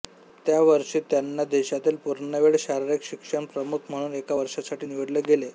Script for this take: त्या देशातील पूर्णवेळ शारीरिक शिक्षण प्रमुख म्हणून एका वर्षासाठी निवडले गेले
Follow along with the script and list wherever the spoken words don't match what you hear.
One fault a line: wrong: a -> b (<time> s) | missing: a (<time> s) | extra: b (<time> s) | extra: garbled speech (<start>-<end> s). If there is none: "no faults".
extra: वर्षी त्यांना (0.6 s)